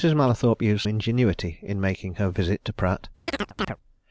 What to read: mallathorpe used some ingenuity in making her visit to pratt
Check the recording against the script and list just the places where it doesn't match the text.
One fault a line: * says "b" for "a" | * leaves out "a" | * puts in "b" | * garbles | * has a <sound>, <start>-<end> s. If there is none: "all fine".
* leaves out "some"
* has a chirp, 3.3-3.8 s